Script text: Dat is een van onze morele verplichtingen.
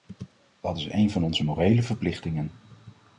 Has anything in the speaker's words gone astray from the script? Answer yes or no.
no